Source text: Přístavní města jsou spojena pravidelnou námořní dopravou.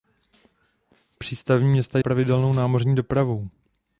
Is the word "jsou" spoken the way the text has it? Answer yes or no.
no